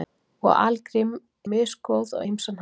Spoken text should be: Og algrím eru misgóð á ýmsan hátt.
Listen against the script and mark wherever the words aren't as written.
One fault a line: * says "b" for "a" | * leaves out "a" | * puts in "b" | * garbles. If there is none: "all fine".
* leaves out "eru"